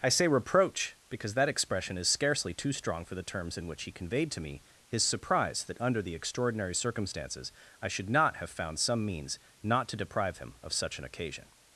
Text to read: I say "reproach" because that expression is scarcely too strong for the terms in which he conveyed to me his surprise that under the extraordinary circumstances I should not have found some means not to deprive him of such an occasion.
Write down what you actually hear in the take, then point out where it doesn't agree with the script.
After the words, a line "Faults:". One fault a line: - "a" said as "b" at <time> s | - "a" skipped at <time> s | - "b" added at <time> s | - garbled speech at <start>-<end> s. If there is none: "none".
I say "reproach" because that expression is scarcely too strong for the terms in which he conveyed to me his surprise that under the extraordinary circumstances I should not have found some means not to deprive him of such an occasion.
Faults:
none